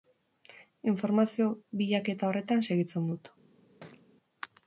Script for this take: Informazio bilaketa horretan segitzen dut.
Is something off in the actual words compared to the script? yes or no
no